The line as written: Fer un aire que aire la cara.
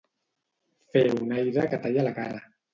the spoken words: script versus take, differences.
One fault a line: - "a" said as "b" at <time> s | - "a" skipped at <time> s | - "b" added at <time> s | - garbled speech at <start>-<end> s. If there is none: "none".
- "aire" said as "talla" at 1.8 s